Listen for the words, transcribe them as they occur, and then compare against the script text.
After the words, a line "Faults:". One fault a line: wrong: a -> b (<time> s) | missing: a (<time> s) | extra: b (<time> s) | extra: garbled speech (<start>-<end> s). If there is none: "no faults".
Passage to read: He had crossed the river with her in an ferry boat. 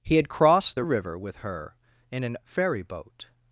He had crossed the river with her in an ferry boat.
Faults:
no faults